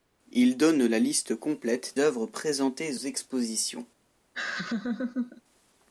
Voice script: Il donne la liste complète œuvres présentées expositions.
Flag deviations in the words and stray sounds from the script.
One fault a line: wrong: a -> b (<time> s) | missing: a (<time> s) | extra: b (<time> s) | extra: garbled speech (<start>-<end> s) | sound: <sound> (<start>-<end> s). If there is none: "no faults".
sound: laugh (4.3-5.4 s)